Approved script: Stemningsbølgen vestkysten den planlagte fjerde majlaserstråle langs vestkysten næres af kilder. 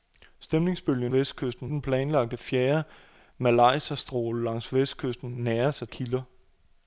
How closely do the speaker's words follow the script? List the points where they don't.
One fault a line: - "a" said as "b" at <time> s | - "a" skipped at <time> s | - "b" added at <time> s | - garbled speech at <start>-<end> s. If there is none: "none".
none